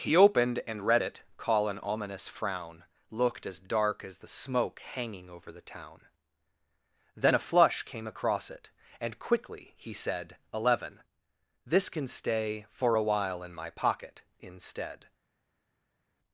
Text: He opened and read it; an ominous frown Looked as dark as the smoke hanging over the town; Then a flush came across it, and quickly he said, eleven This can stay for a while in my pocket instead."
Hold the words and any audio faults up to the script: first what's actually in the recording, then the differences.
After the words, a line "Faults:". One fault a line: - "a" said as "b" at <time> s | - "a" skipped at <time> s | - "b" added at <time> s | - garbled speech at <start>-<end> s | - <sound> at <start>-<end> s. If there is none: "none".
He opened and read it; call an ominous frown Looked as dark as the smoke hanging over the town; Then a flush came across it, and quickly he said, eleven This can stay for a while in my pocket instead."
Faults:
- "call" added at 1.4 s